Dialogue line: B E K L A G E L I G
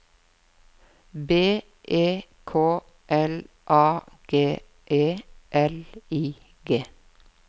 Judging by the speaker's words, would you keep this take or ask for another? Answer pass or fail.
pass